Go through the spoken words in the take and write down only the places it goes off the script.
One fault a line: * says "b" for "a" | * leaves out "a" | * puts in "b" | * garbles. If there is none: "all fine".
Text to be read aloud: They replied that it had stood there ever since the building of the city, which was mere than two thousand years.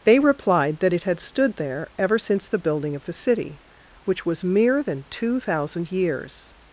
all fine